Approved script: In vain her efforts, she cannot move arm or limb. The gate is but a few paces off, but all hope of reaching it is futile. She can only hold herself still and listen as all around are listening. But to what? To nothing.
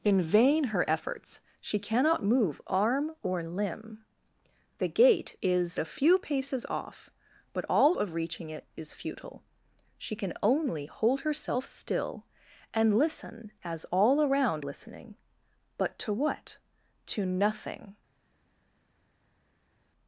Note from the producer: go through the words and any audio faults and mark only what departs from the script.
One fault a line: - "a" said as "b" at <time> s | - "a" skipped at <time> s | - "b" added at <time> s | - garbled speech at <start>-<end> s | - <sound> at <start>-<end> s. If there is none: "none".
- "but" skipped at 5.8 s
- "hope" skipped at 7.9 s
- "are" skipped at 14.6 s